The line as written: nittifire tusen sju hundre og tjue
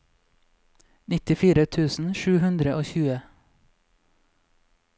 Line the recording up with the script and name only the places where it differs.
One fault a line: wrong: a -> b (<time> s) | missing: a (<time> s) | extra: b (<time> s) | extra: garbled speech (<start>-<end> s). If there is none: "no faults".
no faults